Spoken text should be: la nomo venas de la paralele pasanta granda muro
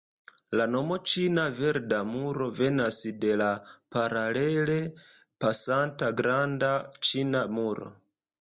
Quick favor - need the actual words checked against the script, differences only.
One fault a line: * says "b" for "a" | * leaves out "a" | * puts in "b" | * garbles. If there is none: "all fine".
* puts in "ĉina verda muro"
* puts in "ĉina"